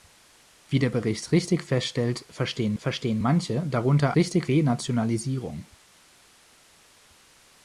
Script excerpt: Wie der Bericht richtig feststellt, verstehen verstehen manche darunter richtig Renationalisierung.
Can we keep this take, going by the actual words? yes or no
yes